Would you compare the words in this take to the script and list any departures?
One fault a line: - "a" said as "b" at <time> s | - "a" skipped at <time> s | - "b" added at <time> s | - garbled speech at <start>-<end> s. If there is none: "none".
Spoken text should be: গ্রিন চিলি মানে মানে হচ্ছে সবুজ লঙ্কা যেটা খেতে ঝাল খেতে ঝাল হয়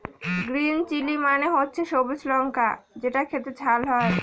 - "মানে" skipped at 1.5 s
- "খেতে ঝাল" skipped at 3.8 s